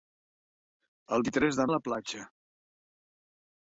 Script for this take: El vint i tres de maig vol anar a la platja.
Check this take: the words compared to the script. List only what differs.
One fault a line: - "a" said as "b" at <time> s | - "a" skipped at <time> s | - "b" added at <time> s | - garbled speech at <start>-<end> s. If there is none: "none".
- "vint" skipped at 1.2 s
- "maig vol anar" skipped at 1.7 s